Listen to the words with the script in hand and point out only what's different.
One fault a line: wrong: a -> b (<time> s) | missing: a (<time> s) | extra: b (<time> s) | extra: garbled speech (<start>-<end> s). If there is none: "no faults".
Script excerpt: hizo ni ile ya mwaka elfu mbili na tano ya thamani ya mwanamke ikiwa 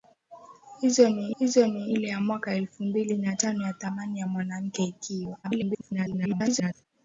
extra: hizo ni (1.4 s)
extra: garbled speech (5.4-6.8 s)